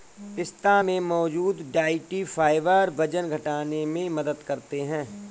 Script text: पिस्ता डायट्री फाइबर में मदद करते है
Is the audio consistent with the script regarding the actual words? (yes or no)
no